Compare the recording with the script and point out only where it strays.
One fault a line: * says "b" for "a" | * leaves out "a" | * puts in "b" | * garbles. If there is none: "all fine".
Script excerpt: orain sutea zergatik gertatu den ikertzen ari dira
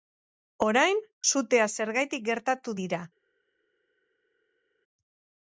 * leaves out "den ikertzen ari"